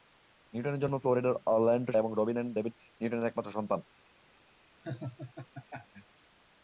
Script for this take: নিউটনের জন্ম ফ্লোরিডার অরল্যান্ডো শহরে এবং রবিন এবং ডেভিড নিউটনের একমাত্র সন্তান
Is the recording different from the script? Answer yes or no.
yes